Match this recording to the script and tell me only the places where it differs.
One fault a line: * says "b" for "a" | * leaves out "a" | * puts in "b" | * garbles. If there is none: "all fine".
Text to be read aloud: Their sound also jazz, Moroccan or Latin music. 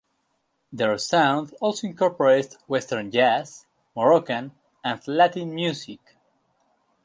* puts in "incorporates western"
* says "and" for "or"